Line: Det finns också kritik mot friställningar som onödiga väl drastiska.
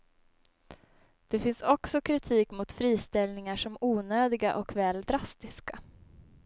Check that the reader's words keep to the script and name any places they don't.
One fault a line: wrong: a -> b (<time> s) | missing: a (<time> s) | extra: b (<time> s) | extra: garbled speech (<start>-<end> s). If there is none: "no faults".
extra: och (4.5 s)